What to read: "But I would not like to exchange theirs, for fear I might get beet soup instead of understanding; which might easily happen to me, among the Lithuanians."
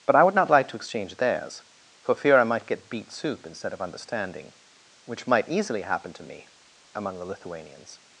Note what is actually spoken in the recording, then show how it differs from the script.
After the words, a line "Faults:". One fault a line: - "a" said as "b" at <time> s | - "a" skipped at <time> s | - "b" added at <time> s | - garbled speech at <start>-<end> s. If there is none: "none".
"But I would not like to exchange theirs, for fear I might get beet soup instead of understanding; which might easily happen to me, among the Lithuanians."
Faults:
none